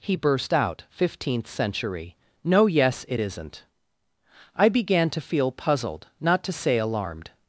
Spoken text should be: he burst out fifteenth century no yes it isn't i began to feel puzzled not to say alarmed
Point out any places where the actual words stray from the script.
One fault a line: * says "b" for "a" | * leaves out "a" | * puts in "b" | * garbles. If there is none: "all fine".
all fine